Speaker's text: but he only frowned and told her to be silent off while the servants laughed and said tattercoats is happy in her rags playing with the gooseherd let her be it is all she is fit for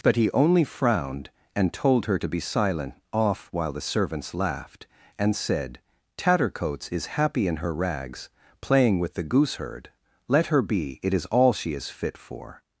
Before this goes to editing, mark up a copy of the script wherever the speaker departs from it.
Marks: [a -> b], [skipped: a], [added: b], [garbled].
but he only frowned and told her to be silent off while the servants laughed and said tattercoats is happy in her rags playing with the gooseherd let her be it is all she is fit for